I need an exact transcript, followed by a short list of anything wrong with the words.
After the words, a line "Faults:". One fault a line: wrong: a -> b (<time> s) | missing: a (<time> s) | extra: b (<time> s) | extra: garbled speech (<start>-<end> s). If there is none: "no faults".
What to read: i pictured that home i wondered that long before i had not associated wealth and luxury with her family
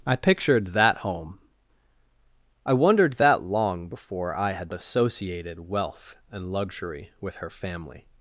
i pictured that home i wondered that long before i had associated wealth and luxury with her family
Faults:
missing: not (4.7 s)